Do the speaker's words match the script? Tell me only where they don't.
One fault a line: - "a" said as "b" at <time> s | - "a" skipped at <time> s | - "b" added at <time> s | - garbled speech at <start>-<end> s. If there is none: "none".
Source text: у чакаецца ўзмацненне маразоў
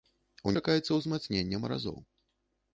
none